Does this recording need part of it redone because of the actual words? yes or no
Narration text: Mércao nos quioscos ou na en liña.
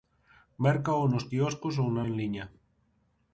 no